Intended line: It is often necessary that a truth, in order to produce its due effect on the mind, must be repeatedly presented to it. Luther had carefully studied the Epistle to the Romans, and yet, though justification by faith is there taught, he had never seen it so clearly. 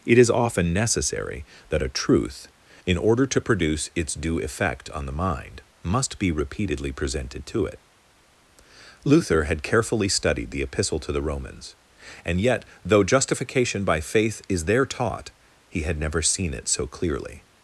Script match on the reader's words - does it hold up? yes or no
yes